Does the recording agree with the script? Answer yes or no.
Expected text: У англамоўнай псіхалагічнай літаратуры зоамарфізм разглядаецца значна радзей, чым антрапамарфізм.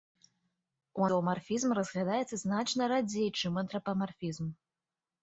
no